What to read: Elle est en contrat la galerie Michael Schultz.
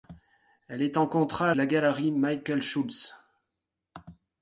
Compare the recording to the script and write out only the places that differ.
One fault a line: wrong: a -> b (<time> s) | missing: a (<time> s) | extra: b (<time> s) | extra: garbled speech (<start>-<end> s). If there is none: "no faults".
no faults